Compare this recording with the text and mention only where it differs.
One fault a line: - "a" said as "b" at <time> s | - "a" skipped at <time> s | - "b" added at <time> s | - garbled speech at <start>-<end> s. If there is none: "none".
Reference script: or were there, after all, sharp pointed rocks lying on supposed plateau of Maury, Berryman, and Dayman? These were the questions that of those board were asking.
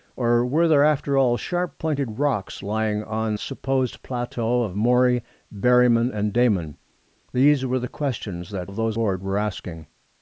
none